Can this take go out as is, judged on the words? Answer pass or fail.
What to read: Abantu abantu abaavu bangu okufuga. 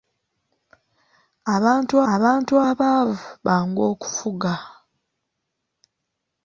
pass